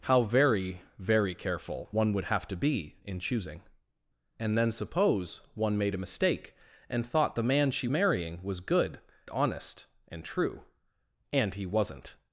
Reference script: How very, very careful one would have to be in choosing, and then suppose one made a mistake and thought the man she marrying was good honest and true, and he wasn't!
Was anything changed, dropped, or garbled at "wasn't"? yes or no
no